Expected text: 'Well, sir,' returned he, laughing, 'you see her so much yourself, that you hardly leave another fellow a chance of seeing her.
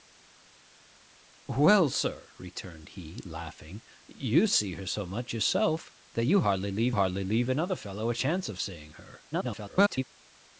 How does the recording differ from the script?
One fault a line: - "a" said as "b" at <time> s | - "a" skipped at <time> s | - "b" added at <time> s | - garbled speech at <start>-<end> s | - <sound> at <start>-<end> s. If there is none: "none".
- "hardly leave" added at 6.9 s
- garbled speech at 9.3-10.0 s